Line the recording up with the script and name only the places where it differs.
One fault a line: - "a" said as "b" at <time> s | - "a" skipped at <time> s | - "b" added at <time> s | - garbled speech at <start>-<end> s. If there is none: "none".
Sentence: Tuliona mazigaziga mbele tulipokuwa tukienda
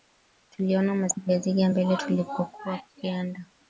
none